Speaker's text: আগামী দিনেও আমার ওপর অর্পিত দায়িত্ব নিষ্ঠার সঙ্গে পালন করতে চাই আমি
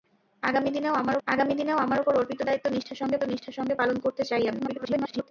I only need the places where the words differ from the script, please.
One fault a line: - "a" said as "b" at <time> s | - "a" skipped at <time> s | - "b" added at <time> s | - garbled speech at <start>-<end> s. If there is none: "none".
- "আগামী দিনেও আমার" added at 1.3 s
- "নিষ্ঠার সঙ্গে" added at 3.2 s
- garbled speech at 4.6-5.3 s